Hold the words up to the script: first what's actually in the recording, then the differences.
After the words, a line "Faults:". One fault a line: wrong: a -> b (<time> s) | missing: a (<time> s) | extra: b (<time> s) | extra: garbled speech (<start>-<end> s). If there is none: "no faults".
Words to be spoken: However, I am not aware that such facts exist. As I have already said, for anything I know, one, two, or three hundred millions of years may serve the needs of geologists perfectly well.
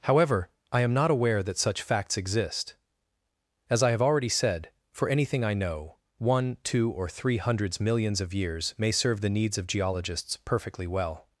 However, I am not aware that such facts exist. As I have already said, for anything I know, one, two, or three hundreds millions of years may serve the needs of geologists perfectly well.
Faults:
wrong: hundred -> hundreds (7.4 s)